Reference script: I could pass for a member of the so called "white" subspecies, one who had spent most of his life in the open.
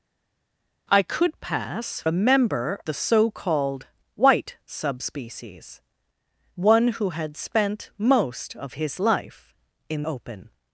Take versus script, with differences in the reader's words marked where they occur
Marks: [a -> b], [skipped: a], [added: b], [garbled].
I could pass [skipped: for] a member [skipped: of] the so called "white" subspecies, one who had spent most of his life in [skipped: the] open.